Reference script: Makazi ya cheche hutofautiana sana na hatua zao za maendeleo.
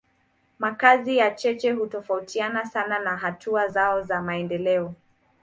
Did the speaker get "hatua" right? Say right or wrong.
right